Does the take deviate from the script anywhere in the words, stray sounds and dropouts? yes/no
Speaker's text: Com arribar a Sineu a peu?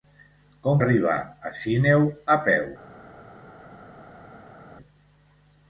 no